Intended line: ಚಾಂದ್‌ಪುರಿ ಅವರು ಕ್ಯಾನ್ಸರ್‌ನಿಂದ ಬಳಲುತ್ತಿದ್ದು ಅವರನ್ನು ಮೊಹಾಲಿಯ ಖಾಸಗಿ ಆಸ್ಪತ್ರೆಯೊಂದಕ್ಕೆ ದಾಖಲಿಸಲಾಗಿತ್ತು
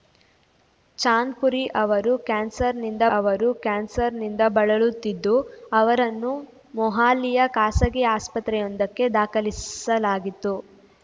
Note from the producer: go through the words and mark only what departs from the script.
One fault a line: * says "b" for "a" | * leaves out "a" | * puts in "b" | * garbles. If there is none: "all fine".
* puts in "ಅವರು ಕ್ಯಾನ್ಸರ್‌ನಿಂದ"